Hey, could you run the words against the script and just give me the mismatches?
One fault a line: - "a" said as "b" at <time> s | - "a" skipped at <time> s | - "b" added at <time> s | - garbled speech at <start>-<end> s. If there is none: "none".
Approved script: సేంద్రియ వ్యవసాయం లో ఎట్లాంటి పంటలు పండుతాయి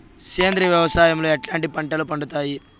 none